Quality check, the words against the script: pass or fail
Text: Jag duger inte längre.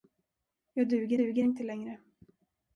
fail